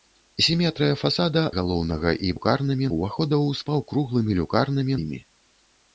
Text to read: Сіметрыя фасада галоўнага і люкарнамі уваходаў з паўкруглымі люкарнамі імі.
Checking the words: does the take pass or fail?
pass